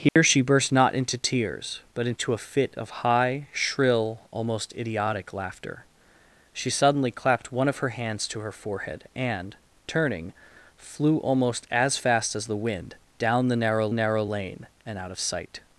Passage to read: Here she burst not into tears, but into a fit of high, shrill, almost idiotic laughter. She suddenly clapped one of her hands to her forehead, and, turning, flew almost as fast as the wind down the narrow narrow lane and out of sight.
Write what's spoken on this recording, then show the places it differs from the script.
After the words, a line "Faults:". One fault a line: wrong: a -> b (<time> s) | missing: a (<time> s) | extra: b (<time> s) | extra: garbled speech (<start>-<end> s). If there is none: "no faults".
Here she burst not into tears, but into a fit of high, shrill, almost idiotic laughter. She suddenly clapped one of her hands to her forehead, and, turning, flew almost as fast as the wind down the narrow narrow lane and out of sight.
Faults:
no faults